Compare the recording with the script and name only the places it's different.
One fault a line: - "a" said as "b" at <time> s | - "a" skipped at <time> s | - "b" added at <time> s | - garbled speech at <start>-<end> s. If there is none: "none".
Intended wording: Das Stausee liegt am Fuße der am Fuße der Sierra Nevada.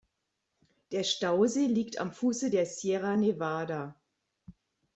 - "Das" said as "Der" at 0.9 s
- "am Fuße der" skipped at 2.7 s